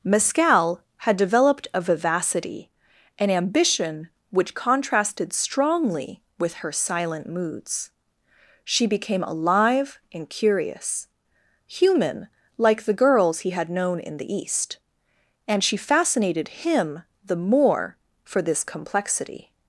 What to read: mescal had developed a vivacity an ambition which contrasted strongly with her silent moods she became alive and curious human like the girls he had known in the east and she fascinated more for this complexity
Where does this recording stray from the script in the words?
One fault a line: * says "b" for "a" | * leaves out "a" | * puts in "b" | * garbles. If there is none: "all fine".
* puts in "him the"